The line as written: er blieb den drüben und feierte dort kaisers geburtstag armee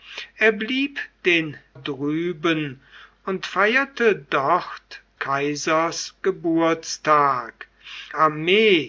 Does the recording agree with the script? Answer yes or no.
yes